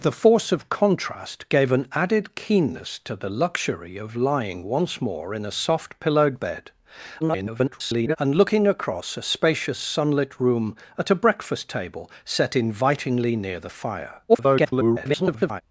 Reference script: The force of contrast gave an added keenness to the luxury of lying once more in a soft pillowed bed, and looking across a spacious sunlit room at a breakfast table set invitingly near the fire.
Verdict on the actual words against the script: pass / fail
fail